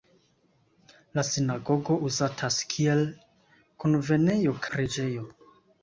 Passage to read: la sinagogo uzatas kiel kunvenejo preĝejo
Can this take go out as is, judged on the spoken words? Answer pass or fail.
pass